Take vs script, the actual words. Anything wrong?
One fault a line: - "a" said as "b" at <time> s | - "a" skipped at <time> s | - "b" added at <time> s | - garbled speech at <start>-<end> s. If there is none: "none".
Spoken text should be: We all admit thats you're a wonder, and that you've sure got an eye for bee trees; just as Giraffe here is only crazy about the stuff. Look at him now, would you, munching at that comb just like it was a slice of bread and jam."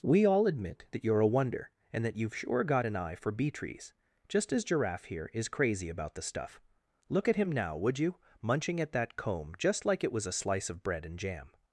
- "thats" said as "that" at 0.9 s
- "only" skipped at 5.5 s